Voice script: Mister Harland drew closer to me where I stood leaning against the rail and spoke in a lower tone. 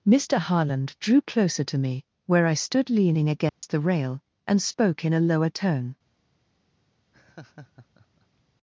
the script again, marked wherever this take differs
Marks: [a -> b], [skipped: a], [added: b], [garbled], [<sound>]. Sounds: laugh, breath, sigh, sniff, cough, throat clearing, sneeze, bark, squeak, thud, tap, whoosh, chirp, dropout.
Mister Harland drew closer to me where I stood leaning against [dropout] the rail and spoke in a lower tone. [laugh]